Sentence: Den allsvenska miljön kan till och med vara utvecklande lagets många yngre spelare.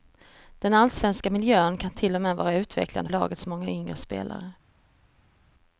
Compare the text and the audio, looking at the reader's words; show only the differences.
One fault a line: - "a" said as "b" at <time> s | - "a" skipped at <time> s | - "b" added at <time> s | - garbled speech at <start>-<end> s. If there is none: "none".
none